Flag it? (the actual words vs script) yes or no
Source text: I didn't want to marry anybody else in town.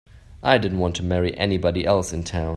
no